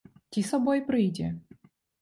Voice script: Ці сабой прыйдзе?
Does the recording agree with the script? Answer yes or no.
yes